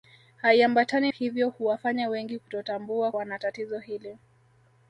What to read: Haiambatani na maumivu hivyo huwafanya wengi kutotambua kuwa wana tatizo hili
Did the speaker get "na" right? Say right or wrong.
wrong